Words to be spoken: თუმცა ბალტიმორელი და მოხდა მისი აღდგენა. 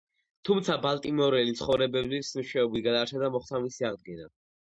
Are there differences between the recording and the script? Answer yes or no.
yes